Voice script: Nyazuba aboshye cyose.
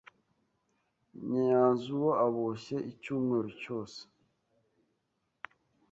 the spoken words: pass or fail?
fail